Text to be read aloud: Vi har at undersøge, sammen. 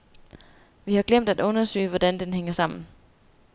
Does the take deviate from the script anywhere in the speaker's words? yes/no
yes